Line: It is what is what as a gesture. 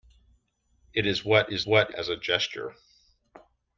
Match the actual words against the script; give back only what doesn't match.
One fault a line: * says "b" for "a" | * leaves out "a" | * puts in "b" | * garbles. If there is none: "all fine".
all fine